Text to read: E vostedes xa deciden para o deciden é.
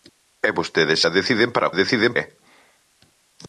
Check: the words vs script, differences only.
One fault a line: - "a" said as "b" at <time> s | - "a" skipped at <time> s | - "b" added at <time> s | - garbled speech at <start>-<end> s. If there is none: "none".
none